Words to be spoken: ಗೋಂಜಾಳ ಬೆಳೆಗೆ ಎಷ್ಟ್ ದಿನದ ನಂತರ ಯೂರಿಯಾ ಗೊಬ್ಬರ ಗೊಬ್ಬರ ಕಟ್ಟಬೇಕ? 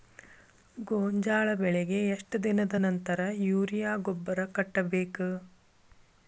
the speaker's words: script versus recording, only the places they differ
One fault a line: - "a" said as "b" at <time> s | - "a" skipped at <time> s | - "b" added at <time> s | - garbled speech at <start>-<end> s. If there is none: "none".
- "ಗೊಬ್ಬರ" skipped at 4.5 s